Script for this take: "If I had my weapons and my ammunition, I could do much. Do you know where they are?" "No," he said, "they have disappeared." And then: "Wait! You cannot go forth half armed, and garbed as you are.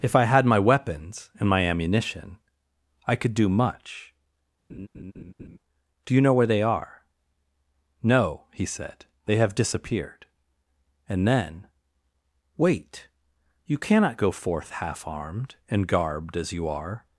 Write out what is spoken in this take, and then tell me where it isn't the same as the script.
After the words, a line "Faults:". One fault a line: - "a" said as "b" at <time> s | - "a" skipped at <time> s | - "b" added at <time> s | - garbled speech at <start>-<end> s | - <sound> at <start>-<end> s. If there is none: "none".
"If I had my weapons and my ammunition, I could do much. Do you know where they are?" "No," he said, "they have disappeared." And then: "Wait! You cannot go forth half armed, and garbed as you are.
Faults:
- laugh at 4.7-5.6 s